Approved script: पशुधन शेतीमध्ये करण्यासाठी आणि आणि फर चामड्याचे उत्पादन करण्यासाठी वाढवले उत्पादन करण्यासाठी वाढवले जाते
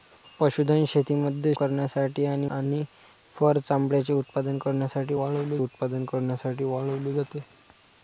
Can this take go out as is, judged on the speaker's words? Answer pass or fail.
pass